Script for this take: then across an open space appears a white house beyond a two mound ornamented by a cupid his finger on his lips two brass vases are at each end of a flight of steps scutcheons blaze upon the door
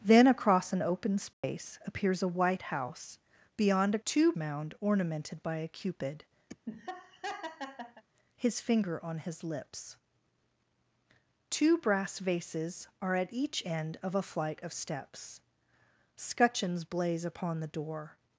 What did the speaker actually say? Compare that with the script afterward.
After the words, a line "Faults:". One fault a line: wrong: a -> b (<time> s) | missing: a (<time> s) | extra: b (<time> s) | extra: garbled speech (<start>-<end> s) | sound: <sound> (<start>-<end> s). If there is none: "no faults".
then across an open space appears a white house beyond a two mound ornamented by a cupid his finger on his lips two brass vases are at each end of a flight of steps scutcheons blaze upon the door
Faults:
sound: dropout (1.3-1.4 s)
sound: laugh (6.5-8.0 s)